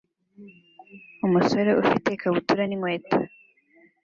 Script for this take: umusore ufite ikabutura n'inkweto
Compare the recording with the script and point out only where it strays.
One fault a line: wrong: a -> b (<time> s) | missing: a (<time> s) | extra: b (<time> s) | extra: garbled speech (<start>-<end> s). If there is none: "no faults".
no faults